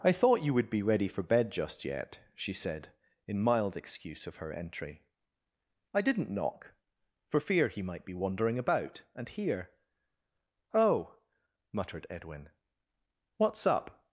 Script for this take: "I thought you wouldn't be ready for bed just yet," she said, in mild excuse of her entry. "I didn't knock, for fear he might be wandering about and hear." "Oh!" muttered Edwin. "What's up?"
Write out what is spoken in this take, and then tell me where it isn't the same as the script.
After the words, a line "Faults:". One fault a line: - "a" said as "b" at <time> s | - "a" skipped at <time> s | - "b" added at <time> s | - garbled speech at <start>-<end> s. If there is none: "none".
"I thought you would be ready for bed just yet," she said, in mild excuse of her entry. "I didn't knock, for fear he might be wandering about and hear." "Oh!" muttered Edwin. "What's up?"
Faults:
- "wouldn't" said as "would" at 0.6 s